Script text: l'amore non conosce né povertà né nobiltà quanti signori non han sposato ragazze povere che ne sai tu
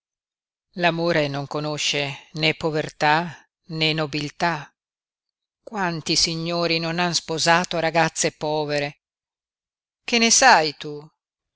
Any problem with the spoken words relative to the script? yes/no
no